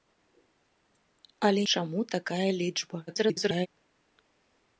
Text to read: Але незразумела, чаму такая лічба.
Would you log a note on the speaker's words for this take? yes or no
yes